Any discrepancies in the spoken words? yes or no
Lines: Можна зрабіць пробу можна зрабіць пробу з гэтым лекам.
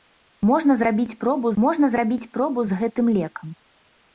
no